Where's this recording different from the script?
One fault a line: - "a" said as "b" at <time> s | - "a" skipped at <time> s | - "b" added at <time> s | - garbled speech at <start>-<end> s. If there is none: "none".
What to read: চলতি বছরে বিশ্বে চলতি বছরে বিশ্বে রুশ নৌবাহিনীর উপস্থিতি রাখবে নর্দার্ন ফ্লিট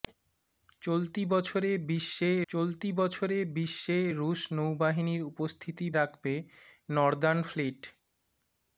none